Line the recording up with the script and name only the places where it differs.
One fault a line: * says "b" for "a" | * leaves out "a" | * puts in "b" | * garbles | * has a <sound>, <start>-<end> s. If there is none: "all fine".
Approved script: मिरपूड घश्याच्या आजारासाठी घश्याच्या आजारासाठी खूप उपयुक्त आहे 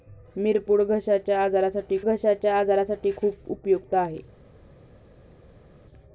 all fine